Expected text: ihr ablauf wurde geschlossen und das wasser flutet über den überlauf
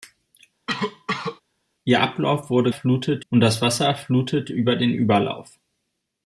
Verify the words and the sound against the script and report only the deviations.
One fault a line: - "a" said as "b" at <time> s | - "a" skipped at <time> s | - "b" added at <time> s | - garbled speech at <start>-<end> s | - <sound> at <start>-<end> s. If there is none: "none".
- cough at 0.7-1.4 s
- "geschlossen" said as "flutet" at 2.7 s